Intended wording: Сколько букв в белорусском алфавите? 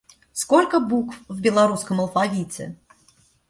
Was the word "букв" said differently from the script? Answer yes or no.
no